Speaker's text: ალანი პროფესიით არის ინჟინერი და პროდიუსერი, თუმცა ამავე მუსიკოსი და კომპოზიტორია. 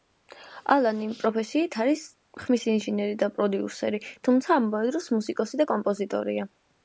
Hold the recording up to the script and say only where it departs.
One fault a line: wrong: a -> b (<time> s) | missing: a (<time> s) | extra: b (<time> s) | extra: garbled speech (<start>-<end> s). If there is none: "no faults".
extra: ხმის (2.5 s)
extra: დროს (5.0 s)